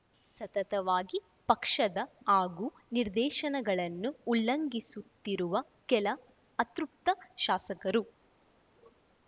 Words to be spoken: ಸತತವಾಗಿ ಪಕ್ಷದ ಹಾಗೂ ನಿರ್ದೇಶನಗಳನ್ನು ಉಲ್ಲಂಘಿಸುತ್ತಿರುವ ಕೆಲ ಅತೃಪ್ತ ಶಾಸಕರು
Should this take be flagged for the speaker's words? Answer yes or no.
no